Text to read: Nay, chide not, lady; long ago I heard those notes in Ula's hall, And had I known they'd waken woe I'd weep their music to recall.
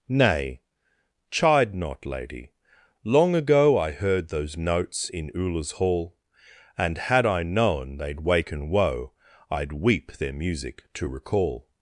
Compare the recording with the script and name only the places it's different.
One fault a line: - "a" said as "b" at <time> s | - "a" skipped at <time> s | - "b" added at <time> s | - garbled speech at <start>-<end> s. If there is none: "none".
none